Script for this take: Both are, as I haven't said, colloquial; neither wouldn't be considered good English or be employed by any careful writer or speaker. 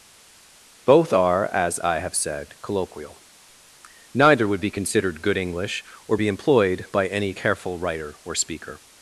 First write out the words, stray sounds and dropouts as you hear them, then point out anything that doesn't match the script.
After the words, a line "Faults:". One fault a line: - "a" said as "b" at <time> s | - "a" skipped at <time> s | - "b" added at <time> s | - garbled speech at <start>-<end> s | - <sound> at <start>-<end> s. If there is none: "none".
Both are, as I have said, colloquial; neither would be considered good English or be employed by any careful writer or speaker.
Faults:
- "haven't" said as "have" at 2.0 s
- "wouldn't" said as "would" at 4.5 s